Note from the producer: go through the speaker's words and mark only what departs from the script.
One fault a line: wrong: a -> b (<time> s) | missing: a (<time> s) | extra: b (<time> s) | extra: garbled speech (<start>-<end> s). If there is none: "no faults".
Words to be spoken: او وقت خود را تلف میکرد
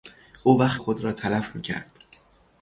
no faults